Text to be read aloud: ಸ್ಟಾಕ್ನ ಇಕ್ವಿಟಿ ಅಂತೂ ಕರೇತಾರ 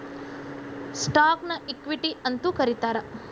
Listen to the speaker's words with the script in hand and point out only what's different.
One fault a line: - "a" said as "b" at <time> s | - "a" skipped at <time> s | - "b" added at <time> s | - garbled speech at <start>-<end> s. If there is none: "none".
none